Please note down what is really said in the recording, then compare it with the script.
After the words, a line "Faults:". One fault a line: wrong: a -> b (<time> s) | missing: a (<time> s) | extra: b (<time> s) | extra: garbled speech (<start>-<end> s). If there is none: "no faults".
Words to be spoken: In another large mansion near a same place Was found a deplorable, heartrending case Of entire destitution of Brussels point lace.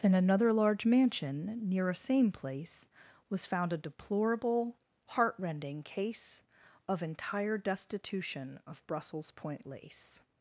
In another large mansion near a same place Was found a deplorable, heartrending case Of entire destitution of Brussels point lace.
Faults:
no faults